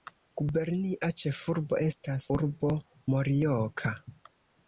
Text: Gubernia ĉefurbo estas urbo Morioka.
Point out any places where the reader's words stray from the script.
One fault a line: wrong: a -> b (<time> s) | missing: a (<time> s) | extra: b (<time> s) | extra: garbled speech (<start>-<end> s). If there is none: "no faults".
no faults